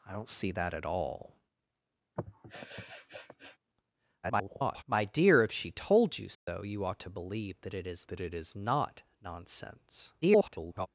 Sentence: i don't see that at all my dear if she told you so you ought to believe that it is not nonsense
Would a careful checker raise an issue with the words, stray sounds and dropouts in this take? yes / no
yes